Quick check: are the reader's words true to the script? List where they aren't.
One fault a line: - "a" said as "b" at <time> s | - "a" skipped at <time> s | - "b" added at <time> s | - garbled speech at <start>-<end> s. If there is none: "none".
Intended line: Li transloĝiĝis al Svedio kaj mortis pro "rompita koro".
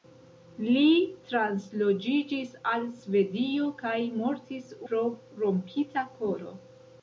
none